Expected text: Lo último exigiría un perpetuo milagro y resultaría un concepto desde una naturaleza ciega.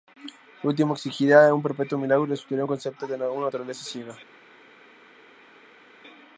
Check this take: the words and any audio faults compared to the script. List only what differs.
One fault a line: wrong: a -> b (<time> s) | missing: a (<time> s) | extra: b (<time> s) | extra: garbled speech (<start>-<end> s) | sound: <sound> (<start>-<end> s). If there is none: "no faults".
wrong: desde -> de (3.1 s)